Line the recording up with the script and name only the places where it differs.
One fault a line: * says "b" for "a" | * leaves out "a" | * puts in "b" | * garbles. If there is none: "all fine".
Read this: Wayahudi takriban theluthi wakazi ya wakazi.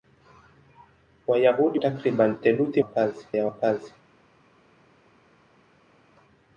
all fine